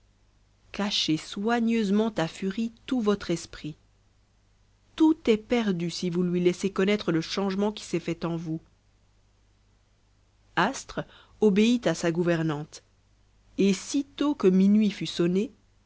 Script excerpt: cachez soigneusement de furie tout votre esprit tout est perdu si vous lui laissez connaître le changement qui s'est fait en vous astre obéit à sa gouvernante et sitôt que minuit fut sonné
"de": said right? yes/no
no